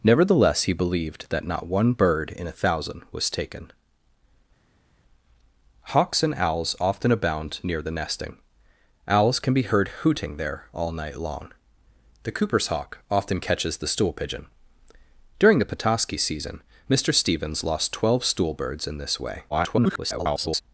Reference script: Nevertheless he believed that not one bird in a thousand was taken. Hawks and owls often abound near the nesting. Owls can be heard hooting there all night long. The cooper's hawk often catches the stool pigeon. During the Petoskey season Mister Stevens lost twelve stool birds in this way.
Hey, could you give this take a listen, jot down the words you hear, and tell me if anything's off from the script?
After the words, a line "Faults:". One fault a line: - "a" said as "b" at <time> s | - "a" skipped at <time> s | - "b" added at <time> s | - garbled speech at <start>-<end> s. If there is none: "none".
Nevertheless he believed that not one bird in a thousand was taken. Hawks and owls often abound near the nesting. Owls can be heard hooting there all night long. The cooper's hawk often catches the stool pigeon. During the Petoskey season Mister Stevens lost twelve stool birds in this way. [garbled]
Faults:
- garbled speech at 19.5-20.6 s